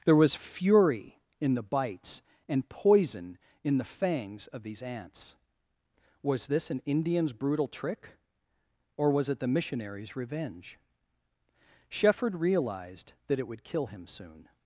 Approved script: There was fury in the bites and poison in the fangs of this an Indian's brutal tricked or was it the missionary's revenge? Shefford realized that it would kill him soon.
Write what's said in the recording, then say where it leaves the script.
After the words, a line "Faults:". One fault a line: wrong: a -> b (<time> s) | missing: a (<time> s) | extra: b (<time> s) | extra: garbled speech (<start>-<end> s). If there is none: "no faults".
There was fury in the bites and poison in the fangs of these ants. Was this an Indian's brutal trick or was it the missionary's revenge? Shefford realized that it would kill him soon.
Faults:
extra: these ants Was (4.6 s)
wrong: tricked -> trick (7.7 s)